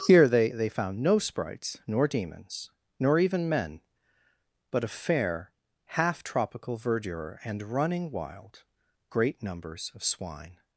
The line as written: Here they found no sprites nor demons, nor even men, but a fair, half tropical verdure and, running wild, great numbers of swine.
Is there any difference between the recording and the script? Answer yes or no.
yes